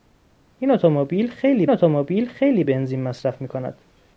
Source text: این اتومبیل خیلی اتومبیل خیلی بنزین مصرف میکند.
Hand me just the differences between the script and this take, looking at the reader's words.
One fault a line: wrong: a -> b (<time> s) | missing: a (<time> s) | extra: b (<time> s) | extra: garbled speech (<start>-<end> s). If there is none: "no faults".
no faults